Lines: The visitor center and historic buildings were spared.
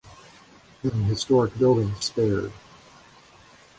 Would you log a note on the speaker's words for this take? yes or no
yes